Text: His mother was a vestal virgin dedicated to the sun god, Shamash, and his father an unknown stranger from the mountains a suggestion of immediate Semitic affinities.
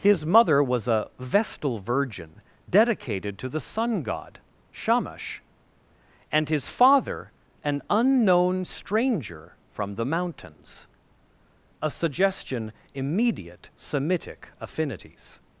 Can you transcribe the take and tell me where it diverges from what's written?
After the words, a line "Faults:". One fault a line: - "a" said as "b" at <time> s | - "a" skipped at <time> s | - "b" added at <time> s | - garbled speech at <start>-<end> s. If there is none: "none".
His mother was a vestal virgin dedicated to the sun god, Shamash, and his father an unknown stranger from the mountains a suggestion immediate Semitic affinities.
Faults:
- "of" skipped at 12.7 s